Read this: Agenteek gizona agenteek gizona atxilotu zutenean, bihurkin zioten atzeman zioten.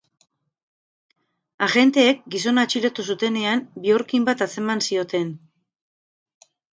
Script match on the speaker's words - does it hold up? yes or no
no